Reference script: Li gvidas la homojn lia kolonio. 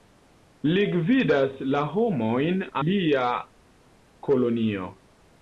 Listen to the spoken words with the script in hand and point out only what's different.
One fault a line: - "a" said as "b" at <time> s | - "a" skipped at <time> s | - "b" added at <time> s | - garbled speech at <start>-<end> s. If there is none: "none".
none